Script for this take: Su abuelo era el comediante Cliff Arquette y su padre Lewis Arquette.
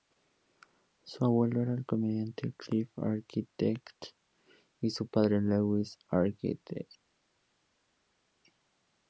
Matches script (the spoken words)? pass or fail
pass